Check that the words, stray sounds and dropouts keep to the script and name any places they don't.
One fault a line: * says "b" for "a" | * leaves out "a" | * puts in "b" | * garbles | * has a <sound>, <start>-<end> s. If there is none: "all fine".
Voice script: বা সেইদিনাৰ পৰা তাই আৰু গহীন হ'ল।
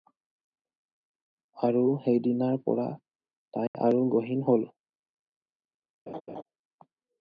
* says "আৰু" for "বা"
* has a dropout, 3.7-3.7 s
* has a laugh, 6.1-6.4 s